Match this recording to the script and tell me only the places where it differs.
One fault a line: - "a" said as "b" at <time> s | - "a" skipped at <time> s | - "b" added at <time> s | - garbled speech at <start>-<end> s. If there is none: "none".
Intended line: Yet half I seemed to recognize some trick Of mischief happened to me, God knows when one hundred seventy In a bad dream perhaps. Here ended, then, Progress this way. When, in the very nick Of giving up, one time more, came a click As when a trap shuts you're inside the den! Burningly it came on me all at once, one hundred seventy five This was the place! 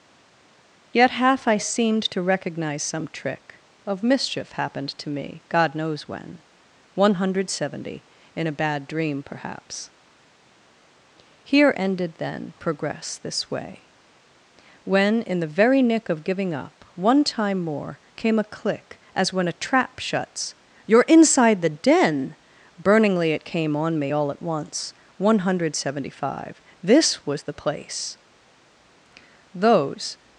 - "those" added at 29.5 s